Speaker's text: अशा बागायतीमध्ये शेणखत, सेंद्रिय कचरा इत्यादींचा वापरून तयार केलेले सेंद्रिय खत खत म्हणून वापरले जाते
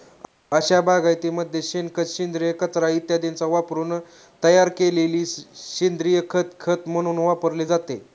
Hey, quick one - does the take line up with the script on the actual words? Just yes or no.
yes